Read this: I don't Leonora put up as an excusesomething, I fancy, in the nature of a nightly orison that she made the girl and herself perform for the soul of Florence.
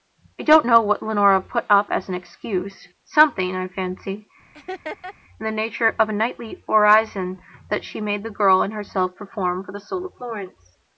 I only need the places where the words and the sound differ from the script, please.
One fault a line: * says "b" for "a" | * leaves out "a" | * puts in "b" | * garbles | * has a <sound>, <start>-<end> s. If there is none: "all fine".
* puts in "know what"
* has a laugh, 4.5-5.1 s